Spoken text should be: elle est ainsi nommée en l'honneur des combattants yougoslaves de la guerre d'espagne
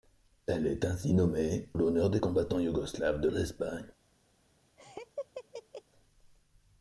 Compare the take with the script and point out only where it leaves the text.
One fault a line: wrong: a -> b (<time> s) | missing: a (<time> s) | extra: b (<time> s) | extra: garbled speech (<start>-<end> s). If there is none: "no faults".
missing: en (1.7 s)
missing: la guerre (3.3 s)